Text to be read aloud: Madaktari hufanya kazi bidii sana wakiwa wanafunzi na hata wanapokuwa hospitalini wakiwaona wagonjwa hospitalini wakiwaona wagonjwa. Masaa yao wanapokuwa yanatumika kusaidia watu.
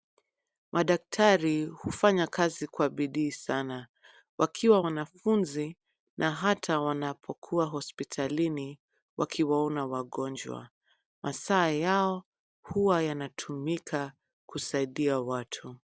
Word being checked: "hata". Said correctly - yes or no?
yes